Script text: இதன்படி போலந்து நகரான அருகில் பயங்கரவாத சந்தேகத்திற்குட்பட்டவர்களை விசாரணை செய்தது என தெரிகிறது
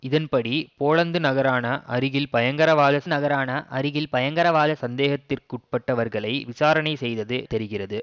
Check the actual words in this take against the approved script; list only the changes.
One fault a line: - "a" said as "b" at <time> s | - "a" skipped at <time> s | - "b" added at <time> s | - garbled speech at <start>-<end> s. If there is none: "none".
- "நகரான அருகில் பயங்கரவாத" added at 3.1 s
- "என" skipped at 7.4 s